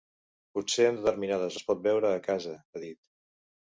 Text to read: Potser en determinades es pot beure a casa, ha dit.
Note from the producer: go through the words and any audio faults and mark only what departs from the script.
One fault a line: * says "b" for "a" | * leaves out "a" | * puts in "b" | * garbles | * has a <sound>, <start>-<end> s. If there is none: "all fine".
all fine